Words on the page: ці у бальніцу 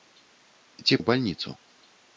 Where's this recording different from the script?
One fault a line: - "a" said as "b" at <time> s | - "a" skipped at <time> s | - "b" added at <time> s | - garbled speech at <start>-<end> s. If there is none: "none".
none